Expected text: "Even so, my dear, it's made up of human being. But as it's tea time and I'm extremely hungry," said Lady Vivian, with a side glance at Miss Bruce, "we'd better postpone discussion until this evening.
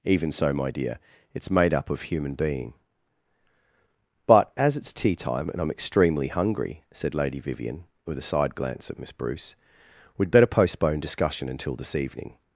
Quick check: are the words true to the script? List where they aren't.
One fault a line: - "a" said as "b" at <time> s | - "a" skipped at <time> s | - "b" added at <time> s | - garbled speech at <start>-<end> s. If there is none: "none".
none